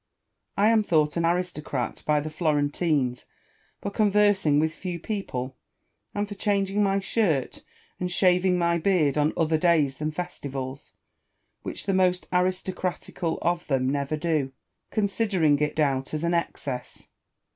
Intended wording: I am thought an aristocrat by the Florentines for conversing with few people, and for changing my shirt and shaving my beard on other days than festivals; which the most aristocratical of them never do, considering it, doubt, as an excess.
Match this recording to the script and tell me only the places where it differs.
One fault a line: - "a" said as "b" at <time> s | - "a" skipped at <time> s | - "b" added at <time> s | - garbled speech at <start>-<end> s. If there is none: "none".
none